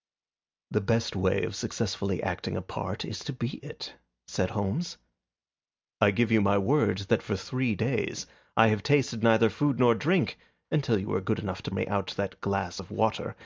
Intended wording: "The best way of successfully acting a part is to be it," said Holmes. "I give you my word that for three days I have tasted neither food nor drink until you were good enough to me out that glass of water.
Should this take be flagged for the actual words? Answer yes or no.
no